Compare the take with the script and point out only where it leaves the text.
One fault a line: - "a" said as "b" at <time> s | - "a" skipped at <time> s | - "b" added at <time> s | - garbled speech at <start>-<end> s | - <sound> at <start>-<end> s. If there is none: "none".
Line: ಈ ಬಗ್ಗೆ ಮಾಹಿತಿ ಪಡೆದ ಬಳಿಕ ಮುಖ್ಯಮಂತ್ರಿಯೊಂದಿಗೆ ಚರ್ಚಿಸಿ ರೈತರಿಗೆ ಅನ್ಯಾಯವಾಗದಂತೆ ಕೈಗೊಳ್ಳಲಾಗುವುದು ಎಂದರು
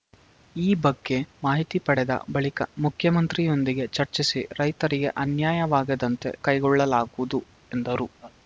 - laugh at 8.2-8.4 s